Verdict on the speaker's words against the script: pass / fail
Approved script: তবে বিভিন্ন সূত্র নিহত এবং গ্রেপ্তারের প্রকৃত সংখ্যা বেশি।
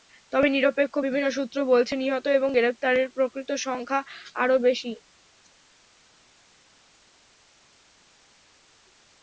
fail